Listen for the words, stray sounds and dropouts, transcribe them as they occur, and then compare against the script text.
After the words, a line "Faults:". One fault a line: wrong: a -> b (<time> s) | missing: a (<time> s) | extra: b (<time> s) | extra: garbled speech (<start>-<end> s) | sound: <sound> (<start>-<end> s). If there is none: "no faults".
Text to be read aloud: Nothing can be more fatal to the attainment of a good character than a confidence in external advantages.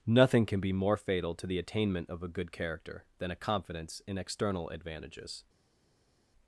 Nothing can be more fatal to the attainment of a good character than a confidence in external advantages.
Faults:
no faults